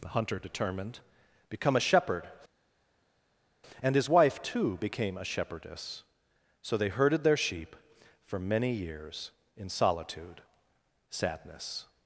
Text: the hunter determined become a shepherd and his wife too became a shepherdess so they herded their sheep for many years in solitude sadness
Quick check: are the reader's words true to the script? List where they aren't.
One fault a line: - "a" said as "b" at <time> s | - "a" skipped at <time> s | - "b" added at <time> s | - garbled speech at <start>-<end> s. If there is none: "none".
none